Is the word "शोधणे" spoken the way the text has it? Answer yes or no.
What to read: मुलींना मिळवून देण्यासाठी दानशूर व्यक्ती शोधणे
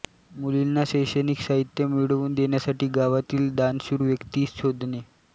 yes